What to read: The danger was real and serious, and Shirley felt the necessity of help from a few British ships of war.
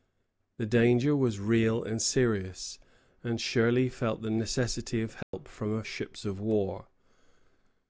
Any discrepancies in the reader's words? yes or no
yes